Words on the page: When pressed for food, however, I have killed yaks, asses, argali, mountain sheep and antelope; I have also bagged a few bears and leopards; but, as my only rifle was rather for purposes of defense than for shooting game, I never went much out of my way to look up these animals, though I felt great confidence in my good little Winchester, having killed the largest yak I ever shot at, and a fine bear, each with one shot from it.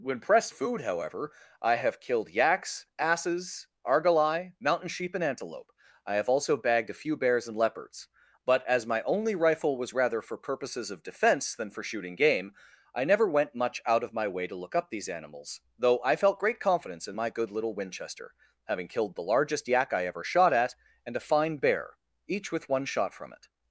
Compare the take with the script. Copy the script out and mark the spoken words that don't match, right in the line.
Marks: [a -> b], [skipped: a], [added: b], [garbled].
When pressed [skipped: for] food, however, I have killed yaks, asses, argali, mountain sheep and antelope; I have also bagged a few bears and leopards; but, as my only rifle was rather for purposes of defense than for shooting game, I never went much out of my way to look up these animals, though I felt great confidence in my good little Winchester, having killed the largest yak I ever shot at, and a fine bear, each with one shot from it.